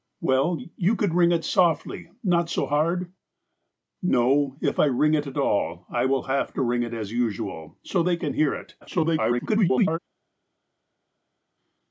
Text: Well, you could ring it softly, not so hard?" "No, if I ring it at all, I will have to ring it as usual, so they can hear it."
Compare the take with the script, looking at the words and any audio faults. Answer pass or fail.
fail